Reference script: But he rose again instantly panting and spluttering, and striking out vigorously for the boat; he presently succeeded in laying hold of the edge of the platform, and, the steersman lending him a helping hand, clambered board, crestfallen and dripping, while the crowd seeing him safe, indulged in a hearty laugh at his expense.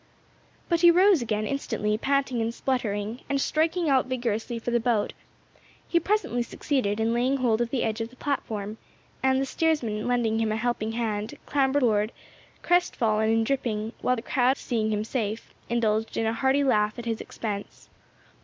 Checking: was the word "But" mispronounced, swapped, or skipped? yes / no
no